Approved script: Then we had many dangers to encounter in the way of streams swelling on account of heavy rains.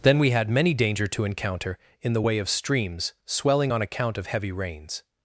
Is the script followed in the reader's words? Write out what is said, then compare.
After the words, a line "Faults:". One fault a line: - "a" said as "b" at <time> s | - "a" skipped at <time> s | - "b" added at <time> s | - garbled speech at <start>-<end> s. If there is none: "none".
Then we had many danger to encounter in the way of streams swelling on account of heavy rains.
Faults:
- "dangers" said as "danger" at 0.7 s